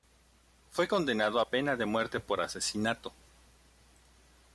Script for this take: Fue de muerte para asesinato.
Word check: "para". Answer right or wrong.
wrong